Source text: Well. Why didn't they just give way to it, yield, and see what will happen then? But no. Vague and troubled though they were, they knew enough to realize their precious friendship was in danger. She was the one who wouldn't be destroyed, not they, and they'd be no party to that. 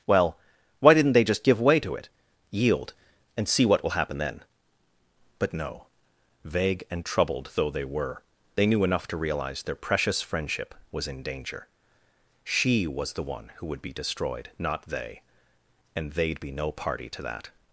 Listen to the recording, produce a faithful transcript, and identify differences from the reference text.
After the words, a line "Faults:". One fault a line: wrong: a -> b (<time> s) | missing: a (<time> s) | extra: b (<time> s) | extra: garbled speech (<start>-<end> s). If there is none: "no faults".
Well. Why didn't they just give way to it, yield, and see what will happen then? But no. Vague and troubled though they were, they knew enough to realize their precious friendship was in danger. She was the one who would be destroyed, not they, and they'd be no party to that.
Faults:
wrong: wouldn't -> would (13.7 s)